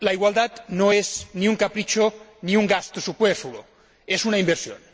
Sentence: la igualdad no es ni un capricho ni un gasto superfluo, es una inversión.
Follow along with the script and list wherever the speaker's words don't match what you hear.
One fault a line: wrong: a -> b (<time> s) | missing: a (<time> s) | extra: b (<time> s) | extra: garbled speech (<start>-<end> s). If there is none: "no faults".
no faults